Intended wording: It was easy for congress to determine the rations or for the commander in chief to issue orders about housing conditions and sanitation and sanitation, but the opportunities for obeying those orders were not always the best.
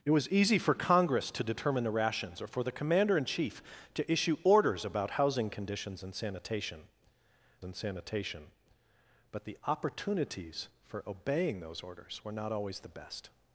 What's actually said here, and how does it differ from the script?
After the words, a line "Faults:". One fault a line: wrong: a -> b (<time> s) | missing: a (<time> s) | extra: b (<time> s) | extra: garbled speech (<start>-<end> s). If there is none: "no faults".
It was easy for congress to determine the rations or for the commander in chief to issue orders about housing conditions and sanitation and sanitation, but the opportunities for obeying those orders were not always the best.
Faults:
no faults